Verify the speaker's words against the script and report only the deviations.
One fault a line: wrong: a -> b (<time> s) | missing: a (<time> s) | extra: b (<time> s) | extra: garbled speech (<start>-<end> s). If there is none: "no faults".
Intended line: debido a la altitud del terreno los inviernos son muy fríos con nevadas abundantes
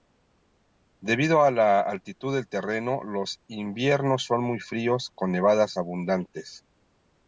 no faults